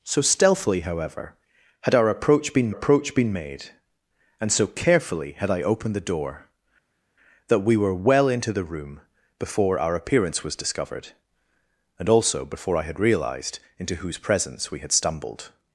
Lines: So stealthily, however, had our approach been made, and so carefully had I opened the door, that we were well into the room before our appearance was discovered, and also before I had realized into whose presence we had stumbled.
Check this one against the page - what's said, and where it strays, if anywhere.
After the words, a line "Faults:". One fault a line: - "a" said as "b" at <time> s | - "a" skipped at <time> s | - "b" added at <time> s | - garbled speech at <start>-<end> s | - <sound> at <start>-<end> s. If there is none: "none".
So stealthily, however, had our approach been approach been made, and so carefully had I opened the door, that we were well into the room before our appearance was discovered, and also before I had realized into whose presence we had stumbled.
Faults:
- "approach been" added at 2.7 s